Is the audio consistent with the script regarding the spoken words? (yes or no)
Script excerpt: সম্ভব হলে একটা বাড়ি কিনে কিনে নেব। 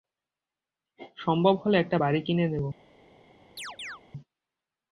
no